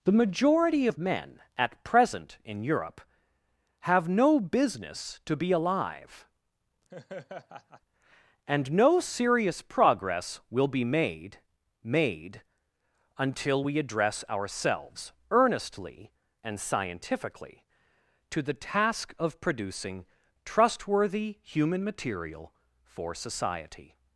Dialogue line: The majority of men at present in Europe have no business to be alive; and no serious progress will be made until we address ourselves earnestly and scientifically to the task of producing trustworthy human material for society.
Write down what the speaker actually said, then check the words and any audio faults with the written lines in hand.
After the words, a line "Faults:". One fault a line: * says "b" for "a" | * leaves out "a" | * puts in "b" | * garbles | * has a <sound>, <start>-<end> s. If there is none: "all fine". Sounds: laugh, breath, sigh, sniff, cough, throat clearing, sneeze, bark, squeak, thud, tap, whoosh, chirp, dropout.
The majority of men at present in Europe have no business to be alive; and no serious progress will be made made until we address ourselves earnestly and scientifically to the task of producing trustworthy human material for society.
Faults:
* has a laugh, 6.9-7.8 s
* puts in "made"